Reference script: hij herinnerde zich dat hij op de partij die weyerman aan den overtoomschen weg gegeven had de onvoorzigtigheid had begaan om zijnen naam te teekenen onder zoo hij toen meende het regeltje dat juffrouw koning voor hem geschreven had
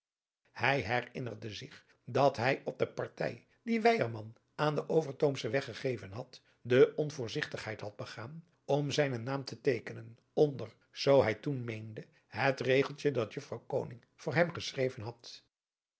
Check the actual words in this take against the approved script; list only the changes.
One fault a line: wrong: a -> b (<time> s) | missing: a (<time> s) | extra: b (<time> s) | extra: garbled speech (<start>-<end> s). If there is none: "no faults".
no faults